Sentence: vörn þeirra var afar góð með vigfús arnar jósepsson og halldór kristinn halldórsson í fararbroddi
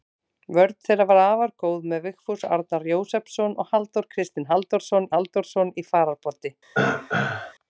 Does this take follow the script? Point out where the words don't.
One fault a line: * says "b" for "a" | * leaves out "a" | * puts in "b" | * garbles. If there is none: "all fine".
* puts in "halldórsson"